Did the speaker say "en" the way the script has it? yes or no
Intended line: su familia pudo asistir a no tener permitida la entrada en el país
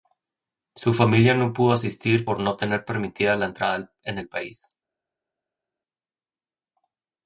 yes